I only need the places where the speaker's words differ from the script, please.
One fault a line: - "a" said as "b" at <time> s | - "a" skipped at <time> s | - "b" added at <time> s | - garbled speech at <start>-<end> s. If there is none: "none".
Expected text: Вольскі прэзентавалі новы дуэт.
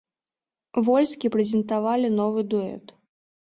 none